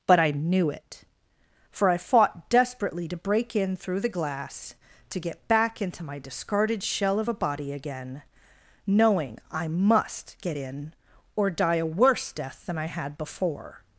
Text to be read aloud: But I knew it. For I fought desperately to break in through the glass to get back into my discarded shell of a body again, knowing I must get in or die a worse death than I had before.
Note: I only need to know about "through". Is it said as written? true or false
true